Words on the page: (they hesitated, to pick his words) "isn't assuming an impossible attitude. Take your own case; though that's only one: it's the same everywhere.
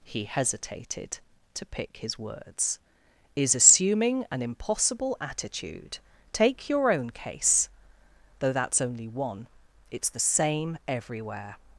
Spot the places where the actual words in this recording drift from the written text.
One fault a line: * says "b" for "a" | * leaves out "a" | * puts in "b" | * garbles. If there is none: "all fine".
* says "he" for "they"
* says "is" for "isn't"